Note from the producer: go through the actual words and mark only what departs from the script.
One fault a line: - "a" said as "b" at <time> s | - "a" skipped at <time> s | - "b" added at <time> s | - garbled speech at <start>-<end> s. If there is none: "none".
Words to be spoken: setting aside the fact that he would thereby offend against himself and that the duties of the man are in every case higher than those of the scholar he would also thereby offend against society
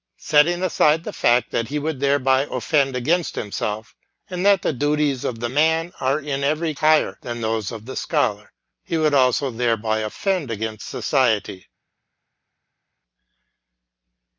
- "case" skipped at 6.7 s